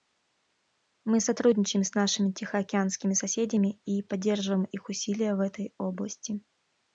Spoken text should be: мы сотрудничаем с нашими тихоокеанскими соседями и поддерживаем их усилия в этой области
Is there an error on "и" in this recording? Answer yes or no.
no